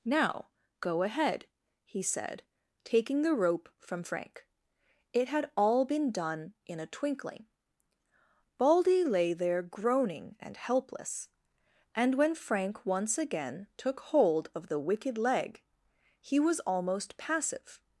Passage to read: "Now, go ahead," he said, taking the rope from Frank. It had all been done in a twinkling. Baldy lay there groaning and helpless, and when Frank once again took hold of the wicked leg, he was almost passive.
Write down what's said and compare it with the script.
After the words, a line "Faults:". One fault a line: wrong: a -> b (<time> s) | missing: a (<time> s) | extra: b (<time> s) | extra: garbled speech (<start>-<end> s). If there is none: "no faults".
"Now, go ahead," he said, taking the rope from Frank. It had all been done in a twinkling. Baldy lay there groaning and helpless, and when Frank once again took hold of the wicked leg, he was almost passive.
Faults:
no faults